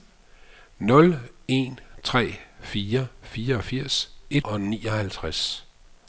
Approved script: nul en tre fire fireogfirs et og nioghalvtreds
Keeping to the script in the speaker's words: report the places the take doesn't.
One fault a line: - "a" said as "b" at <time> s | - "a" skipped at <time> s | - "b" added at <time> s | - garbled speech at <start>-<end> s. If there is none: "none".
none